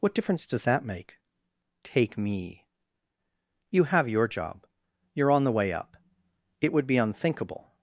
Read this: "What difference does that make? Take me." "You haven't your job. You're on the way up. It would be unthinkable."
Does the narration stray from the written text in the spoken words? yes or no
yes